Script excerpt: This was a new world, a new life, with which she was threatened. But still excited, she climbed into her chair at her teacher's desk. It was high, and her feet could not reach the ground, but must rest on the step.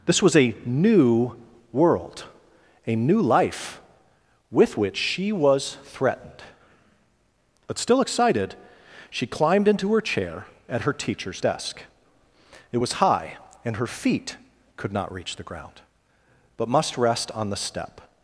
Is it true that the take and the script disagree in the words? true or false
false